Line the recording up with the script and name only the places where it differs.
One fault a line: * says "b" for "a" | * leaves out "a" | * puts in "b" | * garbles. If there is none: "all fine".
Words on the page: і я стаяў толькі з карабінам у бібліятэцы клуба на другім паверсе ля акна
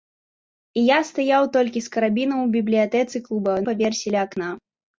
* leaves out "на другім"